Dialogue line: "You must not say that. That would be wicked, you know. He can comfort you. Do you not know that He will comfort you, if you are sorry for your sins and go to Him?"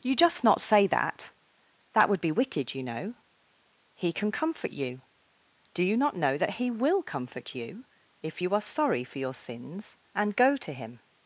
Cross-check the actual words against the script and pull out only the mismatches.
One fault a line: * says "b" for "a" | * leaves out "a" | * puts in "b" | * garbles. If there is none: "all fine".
* says "just" for "must"